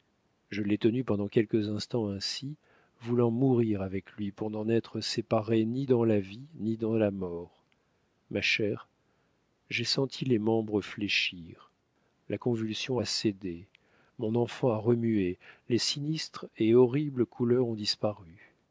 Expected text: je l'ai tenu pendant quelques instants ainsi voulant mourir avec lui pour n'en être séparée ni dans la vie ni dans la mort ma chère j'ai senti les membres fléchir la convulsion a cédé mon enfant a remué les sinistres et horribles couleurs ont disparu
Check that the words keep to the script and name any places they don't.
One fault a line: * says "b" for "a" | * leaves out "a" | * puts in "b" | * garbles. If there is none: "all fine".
all fine